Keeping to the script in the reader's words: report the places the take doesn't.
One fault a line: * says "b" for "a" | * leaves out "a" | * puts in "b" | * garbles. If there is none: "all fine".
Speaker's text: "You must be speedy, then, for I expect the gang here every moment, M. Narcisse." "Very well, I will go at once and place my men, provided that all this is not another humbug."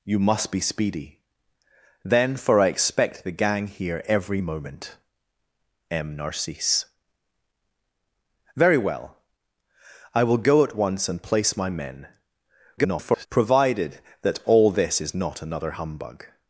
* garbles